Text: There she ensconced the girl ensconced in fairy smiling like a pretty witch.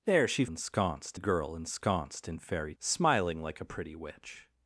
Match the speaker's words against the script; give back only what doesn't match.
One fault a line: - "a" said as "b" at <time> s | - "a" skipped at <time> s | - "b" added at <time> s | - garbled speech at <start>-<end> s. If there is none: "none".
none